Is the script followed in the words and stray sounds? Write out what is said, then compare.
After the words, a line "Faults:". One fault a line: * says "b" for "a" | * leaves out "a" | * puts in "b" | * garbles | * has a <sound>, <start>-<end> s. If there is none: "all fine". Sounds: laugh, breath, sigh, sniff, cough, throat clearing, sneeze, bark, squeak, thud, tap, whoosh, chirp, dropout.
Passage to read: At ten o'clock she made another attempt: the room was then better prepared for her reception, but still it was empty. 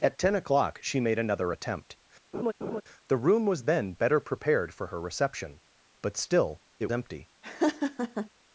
At ten o'clock she made another attempt: the room was then better prepared for her reception, but still it empty.
Faults:
* has a laugh, 2.3-2.8 s
* leaves out "was"
* has a laugh, 7.4-8.3 s